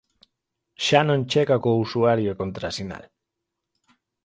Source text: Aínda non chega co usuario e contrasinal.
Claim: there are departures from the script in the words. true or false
true